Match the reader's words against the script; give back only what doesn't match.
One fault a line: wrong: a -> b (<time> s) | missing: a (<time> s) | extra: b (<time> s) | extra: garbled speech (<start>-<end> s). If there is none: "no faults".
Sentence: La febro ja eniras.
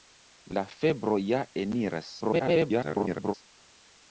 extra: garbled speech (2.2-3.3 s)